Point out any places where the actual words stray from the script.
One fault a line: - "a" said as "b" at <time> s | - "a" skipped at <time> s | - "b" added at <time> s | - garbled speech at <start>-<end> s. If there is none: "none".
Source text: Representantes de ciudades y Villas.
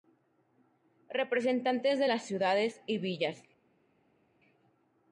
- "las" added at 2.1 s